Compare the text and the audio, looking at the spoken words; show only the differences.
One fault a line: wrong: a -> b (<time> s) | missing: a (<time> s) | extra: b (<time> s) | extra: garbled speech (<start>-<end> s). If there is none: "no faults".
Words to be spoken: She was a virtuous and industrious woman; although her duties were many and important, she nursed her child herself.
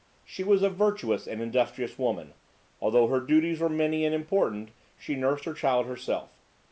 no faults